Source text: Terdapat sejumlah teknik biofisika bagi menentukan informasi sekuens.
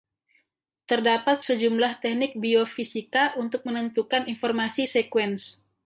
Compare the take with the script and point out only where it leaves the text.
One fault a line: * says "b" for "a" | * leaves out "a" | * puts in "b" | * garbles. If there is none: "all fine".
* says "untuk" for "bagi"